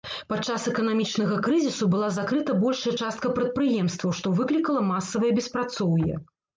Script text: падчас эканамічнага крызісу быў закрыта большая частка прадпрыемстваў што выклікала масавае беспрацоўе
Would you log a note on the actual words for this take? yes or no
yes